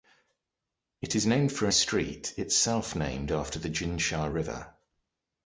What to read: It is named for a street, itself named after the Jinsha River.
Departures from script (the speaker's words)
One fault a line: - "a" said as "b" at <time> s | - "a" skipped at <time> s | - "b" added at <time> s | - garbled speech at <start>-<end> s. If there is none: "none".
none